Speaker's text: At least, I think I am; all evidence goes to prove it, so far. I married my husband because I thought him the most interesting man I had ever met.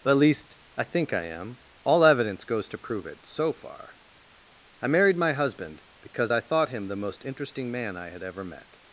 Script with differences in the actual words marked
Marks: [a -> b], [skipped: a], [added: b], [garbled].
At least, I think I am; all evidence goes to prove it, so far. I married my husband because I thought him the most interesting man I had ever met.